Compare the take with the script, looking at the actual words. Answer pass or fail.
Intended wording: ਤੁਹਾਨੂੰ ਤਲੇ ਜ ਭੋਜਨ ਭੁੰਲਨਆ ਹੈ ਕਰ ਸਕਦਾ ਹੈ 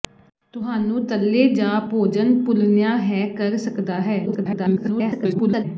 fail